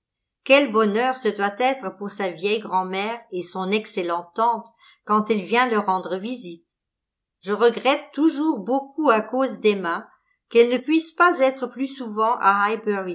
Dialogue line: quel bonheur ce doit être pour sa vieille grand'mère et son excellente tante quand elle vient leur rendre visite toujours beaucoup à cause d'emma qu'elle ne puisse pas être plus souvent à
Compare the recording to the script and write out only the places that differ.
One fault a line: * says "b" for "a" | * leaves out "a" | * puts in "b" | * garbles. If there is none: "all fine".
* puts in "je regrette"